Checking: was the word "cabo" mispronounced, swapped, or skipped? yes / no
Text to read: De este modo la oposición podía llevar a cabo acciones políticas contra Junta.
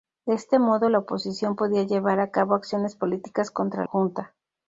no